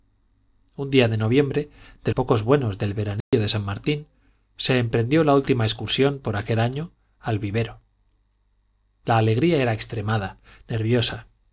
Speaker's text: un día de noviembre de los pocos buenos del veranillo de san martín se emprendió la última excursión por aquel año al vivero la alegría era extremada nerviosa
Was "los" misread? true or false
true